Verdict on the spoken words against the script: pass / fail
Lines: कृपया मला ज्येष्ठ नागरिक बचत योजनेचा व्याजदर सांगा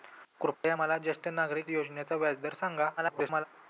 fail